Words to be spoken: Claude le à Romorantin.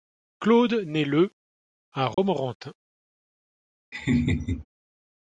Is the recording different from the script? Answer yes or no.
yes